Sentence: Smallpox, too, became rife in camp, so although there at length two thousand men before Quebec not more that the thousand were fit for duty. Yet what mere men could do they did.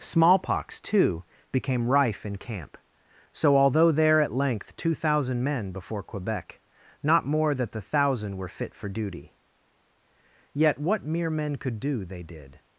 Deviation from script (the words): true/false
false